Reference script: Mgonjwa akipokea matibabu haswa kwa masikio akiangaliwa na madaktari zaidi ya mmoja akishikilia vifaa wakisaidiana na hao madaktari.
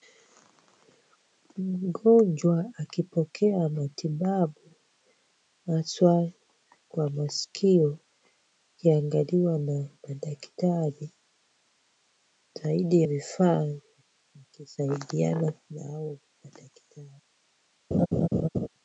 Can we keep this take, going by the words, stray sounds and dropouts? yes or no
no